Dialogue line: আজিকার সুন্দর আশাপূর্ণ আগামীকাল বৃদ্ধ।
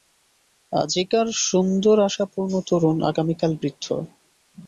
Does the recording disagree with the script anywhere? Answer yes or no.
yes